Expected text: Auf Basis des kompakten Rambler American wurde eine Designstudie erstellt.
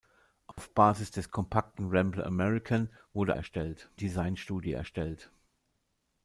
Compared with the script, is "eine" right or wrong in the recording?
wrong